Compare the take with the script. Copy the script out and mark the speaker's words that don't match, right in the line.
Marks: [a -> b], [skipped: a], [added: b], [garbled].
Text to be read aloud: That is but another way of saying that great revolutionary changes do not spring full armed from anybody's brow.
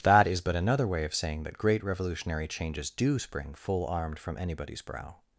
That is but another way of saying that great revolutionary changes do [skipped: not] spring full armed from anybody's brow.